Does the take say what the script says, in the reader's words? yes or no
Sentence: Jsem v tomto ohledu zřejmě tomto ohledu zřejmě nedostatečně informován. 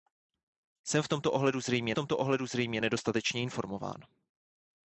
yes